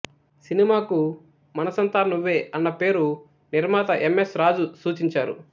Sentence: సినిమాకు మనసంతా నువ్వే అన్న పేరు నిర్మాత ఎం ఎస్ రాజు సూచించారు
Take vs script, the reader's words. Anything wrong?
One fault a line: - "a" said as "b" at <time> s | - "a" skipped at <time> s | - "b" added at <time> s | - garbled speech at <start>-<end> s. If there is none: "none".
none